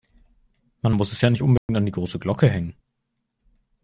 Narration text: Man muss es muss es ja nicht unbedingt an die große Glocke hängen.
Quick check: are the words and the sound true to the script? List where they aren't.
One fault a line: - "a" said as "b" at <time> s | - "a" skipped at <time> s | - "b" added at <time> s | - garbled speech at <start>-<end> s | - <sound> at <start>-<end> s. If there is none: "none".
- "muss es" skipped at 1.2 s
- dropout at 1.6-1.7 s